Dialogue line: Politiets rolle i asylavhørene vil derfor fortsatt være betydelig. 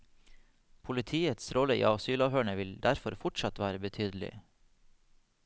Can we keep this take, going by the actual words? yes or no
yes